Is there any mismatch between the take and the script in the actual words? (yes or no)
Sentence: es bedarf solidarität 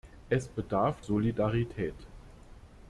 no